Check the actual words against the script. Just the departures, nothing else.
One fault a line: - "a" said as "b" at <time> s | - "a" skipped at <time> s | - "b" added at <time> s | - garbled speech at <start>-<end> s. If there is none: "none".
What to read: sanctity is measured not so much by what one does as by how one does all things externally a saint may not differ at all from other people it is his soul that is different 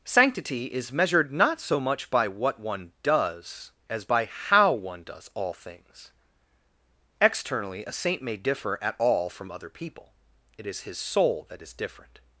- "not" skipped at 8.4 s